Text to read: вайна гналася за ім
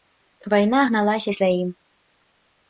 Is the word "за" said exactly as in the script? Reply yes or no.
yes